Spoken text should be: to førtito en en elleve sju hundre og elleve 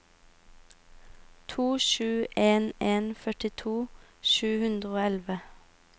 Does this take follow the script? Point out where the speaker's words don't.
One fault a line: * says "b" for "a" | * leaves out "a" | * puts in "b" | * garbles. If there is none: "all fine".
* says "sju" for "førtito"
* says "førtito" for "elleve"